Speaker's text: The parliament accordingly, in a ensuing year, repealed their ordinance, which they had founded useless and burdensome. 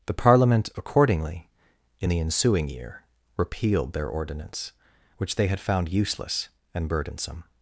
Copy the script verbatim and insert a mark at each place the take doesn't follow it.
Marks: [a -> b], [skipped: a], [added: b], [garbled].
The parliament accordingly, in [a -> the] ensuing year, repealed their ordinance, which they had [founded -> found] useless and burdensome.